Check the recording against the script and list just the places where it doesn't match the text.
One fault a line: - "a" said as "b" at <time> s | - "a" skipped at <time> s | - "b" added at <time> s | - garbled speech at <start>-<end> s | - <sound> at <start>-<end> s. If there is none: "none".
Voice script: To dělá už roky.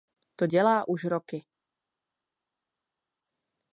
none